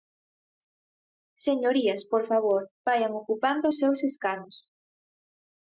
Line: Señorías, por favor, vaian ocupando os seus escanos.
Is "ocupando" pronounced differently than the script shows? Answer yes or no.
no